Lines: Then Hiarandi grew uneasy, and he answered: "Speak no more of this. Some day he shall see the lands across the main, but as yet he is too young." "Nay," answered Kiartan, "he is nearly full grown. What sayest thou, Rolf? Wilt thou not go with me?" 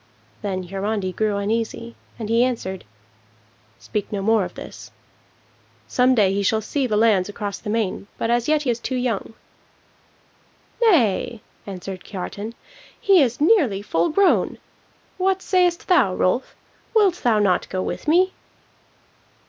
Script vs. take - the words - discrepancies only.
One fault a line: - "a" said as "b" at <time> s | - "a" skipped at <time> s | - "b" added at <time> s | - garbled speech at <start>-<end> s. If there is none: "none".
none